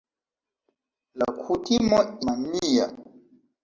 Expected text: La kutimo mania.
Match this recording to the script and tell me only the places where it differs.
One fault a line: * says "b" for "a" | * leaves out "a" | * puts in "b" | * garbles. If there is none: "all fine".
all fine